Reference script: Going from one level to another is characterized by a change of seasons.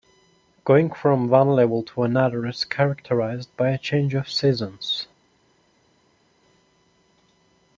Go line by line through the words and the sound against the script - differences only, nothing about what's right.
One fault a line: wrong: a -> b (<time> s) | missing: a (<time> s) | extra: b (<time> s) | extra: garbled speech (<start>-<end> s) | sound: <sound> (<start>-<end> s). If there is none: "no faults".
no faults